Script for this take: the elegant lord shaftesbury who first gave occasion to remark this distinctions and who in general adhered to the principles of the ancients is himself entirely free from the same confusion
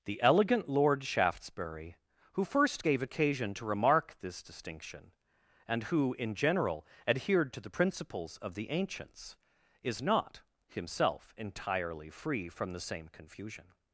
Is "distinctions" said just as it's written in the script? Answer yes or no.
no